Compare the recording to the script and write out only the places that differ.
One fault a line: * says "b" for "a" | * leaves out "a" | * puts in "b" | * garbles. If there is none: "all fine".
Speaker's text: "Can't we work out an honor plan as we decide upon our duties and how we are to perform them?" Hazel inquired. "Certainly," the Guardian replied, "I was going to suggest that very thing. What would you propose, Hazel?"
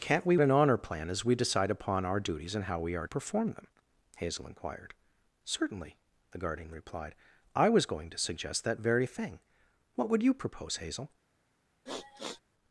* leaves out "work out"
* leaves out "to"